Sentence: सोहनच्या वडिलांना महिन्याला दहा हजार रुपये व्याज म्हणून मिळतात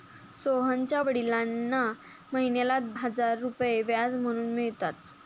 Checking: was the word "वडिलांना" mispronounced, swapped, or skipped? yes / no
no